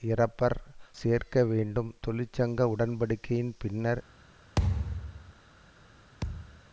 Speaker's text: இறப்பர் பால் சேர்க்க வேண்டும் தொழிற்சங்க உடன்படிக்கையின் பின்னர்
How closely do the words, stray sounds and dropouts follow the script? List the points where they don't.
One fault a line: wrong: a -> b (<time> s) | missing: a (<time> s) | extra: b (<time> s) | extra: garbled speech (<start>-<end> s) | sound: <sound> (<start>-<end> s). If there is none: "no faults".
missing: பால் (0.6 s)
sound: thud (4.6-5.3 s)
sound: thud (6.2-6.6 s)